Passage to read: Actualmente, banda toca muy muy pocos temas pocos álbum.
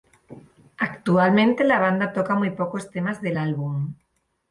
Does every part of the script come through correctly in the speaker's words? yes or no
no